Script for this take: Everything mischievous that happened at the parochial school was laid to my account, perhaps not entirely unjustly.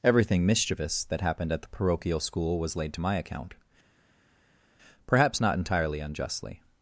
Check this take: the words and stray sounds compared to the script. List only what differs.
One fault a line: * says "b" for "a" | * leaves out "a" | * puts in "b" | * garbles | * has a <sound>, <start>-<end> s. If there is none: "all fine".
all fine